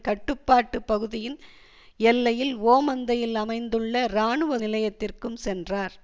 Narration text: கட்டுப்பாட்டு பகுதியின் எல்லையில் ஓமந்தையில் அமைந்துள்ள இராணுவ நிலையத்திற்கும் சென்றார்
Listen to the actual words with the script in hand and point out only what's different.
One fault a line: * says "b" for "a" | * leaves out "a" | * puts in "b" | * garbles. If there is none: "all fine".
all fine